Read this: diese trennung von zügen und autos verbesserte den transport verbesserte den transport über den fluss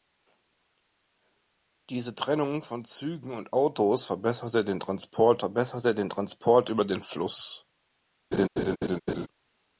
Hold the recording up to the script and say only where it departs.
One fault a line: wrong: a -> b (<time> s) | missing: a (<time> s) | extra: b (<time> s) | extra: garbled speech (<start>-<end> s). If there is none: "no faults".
no faults